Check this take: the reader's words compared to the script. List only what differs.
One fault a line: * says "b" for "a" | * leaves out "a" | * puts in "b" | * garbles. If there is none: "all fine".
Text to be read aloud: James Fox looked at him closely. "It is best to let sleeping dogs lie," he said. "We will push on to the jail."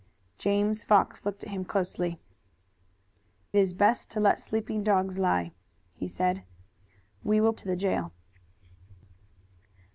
* leaves out "It"
* leaves out "push on"